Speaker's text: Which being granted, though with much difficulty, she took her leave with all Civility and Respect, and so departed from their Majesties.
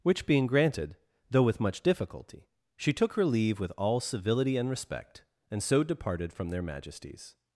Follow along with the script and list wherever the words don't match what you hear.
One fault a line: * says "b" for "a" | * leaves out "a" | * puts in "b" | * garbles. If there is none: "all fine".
all fine